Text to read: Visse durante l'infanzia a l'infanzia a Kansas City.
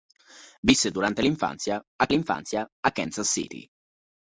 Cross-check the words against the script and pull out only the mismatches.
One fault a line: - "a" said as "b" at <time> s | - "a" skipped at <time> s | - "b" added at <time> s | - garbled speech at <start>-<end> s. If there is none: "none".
none